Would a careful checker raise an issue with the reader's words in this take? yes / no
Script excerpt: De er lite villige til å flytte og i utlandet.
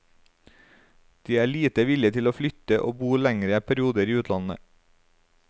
yes